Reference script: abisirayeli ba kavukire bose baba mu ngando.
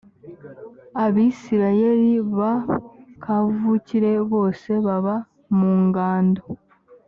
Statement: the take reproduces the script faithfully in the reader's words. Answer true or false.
true